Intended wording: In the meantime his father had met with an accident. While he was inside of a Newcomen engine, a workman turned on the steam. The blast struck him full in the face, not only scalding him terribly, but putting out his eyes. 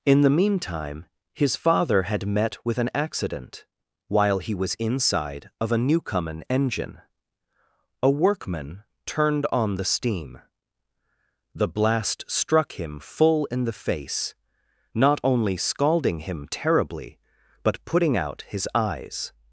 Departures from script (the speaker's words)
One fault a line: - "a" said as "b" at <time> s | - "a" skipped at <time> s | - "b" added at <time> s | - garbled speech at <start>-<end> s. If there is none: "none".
none